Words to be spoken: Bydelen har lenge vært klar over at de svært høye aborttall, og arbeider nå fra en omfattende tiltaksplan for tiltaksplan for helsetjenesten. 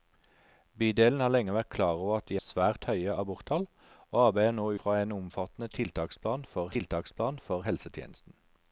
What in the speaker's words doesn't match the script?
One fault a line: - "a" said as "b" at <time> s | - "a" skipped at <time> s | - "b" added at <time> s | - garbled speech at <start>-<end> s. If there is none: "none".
none